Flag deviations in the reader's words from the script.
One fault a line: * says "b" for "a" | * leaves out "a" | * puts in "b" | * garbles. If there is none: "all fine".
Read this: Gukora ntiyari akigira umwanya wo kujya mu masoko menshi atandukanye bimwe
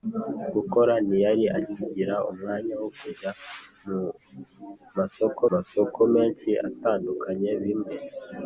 * puts in "masoko"